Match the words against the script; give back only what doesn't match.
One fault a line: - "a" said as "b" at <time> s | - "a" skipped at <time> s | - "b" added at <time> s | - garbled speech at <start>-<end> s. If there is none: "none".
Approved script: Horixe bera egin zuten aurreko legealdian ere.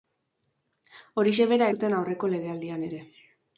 - "egin" skipped at 1.7 s